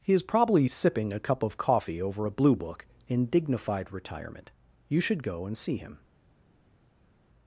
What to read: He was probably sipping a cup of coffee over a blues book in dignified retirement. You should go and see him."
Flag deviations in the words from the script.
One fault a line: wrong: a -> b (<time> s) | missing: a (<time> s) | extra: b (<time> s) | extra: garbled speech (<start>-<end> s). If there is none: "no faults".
wrong: was -> is (0.1 s)
wrong: blues -> blue (2.3 s)